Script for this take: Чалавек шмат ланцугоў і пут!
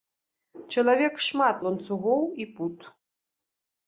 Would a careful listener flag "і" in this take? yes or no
no